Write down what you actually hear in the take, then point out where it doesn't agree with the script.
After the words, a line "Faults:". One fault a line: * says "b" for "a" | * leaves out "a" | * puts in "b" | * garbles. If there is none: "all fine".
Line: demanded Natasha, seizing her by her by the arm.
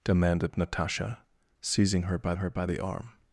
demanded Natasha, seizing her by her by the arm.
Faults:
all fine